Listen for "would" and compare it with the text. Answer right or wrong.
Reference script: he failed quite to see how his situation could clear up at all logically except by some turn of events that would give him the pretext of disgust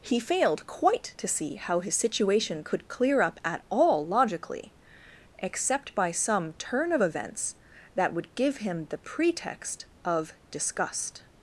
right